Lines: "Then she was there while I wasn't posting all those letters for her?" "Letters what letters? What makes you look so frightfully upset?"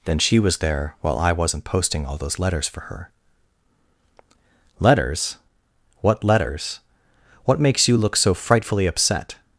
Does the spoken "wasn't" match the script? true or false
true